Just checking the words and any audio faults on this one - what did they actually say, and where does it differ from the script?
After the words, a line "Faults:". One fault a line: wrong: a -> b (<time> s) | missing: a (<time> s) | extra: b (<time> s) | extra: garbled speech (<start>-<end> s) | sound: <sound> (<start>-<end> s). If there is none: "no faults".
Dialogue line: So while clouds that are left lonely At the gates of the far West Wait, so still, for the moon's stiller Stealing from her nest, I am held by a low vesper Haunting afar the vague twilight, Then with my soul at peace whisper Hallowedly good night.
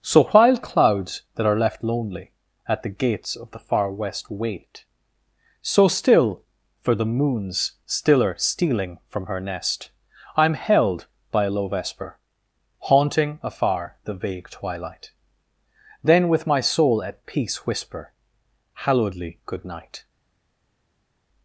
So while clouds that are left lonely At the gates of the far West Wait, so still, for the moon's stiller Stealing from her nest, I am held by a low vesper Haunting afar the vague twilight, Then with my soul at peace whisper Hallowedly good night.
Faults:
no faults